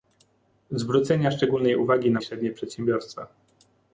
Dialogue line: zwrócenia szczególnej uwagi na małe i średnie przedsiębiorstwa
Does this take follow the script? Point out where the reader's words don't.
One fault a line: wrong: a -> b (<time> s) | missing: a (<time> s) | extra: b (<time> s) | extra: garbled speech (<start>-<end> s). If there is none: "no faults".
missing: małe (2.2 s)